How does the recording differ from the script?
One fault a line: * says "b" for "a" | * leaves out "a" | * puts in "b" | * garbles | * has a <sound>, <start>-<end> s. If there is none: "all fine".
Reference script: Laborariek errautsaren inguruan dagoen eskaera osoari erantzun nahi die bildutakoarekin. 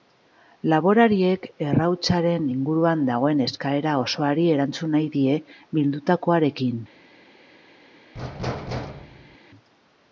* has a thud, 8.1-9.4 s